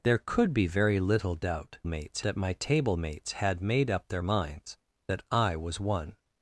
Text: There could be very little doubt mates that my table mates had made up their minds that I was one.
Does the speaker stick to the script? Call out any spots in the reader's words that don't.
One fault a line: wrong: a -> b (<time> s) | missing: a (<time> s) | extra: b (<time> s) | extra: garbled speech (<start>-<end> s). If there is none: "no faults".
no faults